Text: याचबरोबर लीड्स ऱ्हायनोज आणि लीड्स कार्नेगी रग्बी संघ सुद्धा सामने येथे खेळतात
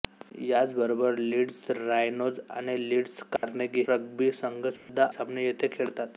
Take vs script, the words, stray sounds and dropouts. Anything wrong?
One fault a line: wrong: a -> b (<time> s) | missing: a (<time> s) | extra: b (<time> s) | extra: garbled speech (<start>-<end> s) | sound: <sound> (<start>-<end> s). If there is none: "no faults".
sound: dropout (3.4-3.4 s)
sound: dropout (4.8-4.9 s)